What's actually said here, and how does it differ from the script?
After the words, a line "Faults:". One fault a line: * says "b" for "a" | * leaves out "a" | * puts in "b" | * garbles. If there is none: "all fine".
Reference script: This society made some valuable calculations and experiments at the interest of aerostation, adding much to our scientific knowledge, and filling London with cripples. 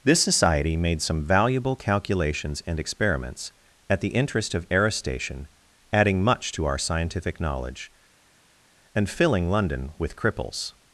This society made some valuable calculations and experiments at the interest of aerostation, adding much to our scientific knowledge, and filling London with cripples.
Faults:
all fine